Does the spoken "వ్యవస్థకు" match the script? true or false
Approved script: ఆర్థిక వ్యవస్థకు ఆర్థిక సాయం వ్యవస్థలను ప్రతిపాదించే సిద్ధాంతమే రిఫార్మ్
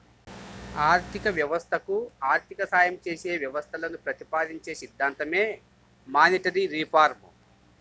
true